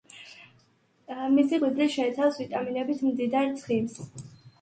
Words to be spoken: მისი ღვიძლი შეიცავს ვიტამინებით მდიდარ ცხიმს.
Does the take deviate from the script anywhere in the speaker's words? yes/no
no